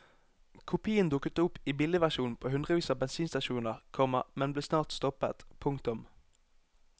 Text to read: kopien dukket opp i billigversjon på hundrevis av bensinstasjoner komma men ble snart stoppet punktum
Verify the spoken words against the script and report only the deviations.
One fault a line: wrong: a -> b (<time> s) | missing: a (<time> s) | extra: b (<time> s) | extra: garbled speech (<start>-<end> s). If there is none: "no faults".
no faults